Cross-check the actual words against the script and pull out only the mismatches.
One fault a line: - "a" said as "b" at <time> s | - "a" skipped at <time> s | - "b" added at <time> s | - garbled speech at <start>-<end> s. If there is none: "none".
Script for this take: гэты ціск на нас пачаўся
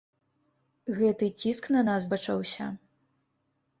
none